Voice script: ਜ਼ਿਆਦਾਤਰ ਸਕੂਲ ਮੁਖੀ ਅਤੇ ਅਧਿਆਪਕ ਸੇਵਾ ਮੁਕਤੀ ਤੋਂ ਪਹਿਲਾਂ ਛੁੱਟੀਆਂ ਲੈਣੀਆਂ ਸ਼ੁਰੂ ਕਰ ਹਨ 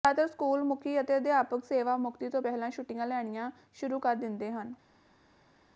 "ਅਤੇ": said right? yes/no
yes